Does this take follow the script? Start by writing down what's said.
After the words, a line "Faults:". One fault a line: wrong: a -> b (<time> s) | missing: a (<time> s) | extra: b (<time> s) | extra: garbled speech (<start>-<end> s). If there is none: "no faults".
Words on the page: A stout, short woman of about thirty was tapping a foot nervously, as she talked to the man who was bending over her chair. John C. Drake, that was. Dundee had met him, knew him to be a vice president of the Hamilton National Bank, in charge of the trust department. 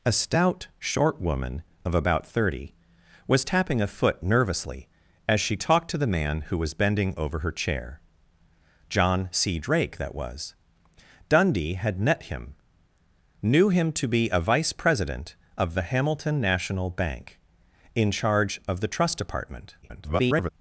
A stout, short woman of about thirty was tapping a foot nervously, as she talked to the man who was bending over her chair. John C. Drake, that was. Dundee had met him, knew him to be a vice president of the Hamilton National Bank, in charge of the trust department. [garbled]
Faults:
extra: garbled speech (19.8-20.5 s)